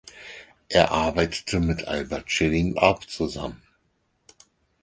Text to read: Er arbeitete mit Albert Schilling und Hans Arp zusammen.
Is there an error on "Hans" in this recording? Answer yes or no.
yes